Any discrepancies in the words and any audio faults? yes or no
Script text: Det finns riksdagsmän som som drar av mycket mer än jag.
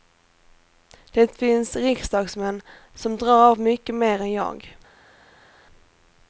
yes